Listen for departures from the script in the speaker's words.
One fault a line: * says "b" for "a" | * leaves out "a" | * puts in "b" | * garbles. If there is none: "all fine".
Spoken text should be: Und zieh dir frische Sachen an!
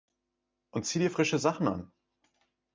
all fine